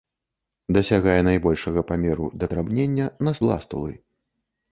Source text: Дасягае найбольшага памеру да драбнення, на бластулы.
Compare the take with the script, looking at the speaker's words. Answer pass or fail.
pass